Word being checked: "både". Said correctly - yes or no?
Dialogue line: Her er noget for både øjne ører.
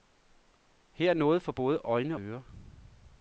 yes